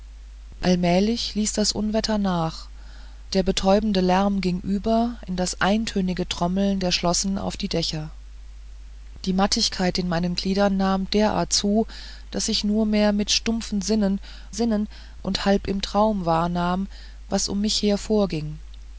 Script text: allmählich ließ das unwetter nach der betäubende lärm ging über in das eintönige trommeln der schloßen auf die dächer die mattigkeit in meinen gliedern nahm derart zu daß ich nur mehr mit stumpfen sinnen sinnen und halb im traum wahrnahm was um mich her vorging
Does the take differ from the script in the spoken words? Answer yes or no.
no